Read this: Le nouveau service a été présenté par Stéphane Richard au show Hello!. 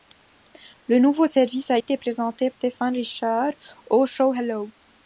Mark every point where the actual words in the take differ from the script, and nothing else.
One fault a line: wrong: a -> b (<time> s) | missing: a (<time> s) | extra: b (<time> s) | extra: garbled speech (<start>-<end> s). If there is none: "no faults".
missing: par (2.5 s)